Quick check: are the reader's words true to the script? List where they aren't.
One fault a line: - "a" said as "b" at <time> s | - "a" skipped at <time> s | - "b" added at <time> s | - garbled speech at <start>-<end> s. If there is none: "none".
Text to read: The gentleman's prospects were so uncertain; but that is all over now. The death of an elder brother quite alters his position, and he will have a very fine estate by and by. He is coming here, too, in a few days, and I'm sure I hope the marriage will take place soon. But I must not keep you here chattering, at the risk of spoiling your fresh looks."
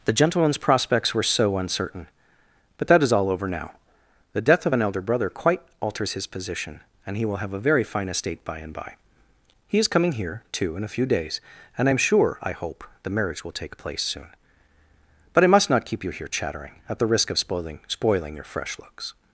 - "spoiling" added at 17.9 s